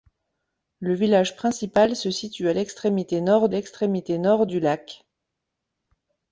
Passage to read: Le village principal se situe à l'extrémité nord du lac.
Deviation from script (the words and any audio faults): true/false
true